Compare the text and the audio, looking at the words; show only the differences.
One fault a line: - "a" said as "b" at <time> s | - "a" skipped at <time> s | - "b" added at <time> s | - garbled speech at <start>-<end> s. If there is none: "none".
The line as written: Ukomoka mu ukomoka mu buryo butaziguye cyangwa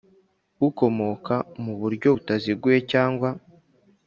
- "ukomoka mu" skipped at 1.7 s